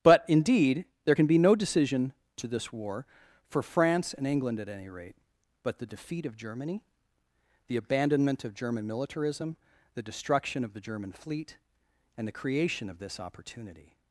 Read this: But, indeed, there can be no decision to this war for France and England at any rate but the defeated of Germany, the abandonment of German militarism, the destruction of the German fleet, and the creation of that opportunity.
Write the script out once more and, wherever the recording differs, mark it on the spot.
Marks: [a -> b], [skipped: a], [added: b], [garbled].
But, indeed, there can be no decision to this war for France and England at any rate but the [defeated -> defeat] of Germany, the abandonment of German militarism, the destruction of the German fleet, and the creation of [that -> this] opportunity.